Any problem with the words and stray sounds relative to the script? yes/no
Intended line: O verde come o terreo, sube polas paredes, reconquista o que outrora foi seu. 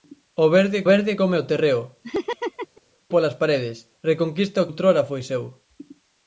yes